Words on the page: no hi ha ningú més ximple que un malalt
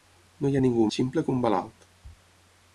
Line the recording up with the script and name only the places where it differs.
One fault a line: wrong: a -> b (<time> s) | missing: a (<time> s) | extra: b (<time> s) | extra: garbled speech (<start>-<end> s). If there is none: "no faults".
missing: més (0.9 s)